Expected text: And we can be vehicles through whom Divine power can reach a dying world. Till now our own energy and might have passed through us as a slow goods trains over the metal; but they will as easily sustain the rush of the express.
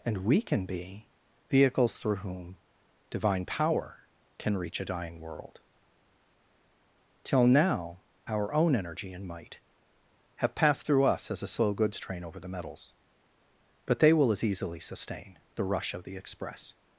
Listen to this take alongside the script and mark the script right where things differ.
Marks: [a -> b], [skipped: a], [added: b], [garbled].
And we can be vehicles through whom Divine power can reach a dying world. Till now our own energy and might have passed through us as a slow goods [trains -> train] over the [metal; -> metals] but they will as easily sustain the rush of the express.